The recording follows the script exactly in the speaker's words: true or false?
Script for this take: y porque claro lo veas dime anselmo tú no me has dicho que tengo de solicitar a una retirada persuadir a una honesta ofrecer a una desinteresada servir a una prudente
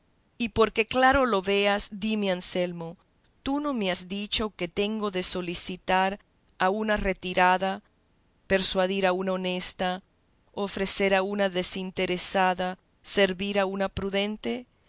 true